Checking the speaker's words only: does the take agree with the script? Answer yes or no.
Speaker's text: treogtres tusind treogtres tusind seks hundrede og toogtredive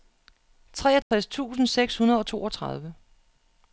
no